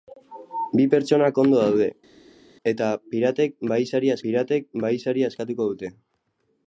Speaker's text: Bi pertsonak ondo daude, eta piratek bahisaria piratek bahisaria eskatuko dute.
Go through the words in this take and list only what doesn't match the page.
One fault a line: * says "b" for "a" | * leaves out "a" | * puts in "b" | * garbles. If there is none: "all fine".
all fine